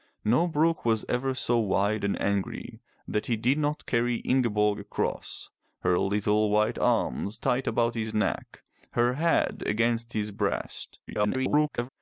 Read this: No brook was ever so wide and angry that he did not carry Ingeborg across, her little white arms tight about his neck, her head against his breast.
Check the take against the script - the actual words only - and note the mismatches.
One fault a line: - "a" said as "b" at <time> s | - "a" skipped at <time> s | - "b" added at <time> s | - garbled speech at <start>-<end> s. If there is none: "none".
- garbled speech at 11.1-11.9 s